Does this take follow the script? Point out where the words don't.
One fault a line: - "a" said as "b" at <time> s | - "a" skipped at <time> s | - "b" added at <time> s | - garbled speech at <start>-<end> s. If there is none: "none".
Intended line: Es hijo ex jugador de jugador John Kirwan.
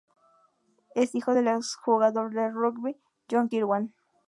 - "del" added at 1.3 s
- "jugador" said as "rugby" at 2.5 s